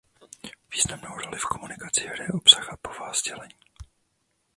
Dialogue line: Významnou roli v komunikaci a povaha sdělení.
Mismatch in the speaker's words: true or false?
true